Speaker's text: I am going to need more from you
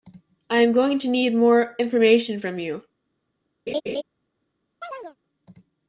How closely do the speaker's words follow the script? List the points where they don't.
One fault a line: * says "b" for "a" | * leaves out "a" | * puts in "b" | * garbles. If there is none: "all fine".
* puts in "information"